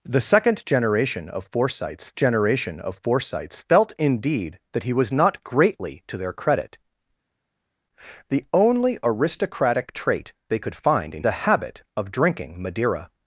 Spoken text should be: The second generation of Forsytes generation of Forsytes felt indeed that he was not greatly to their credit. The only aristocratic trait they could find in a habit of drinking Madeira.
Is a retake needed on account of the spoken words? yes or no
no